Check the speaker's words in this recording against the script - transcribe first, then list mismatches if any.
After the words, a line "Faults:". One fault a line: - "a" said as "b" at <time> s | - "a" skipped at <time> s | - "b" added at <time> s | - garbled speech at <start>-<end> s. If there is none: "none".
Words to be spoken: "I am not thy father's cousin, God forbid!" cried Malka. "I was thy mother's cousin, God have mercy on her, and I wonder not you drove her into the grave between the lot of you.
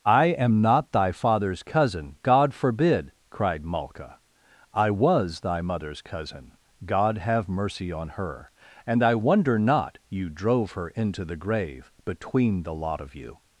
"I am not thy father's cousin, God forbid!" cried Malka. "I was thy mother's cousin, God have mercy on her, and I wonder not you drove her into the grave between the lot of you.
Faults:
none